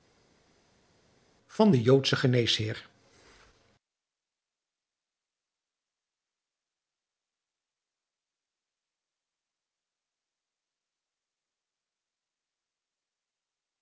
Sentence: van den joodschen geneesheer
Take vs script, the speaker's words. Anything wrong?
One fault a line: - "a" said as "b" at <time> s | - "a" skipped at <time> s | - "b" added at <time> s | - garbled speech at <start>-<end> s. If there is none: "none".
none